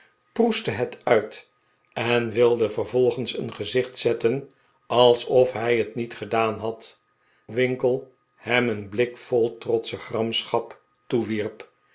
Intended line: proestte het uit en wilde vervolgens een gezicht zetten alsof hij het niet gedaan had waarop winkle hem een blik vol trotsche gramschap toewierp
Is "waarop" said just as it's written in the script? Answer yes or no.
no